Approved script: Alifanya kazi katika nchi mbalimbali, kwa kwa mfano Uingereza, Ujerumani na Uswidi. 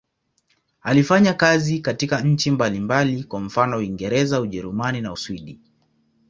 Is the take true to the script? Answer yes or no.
no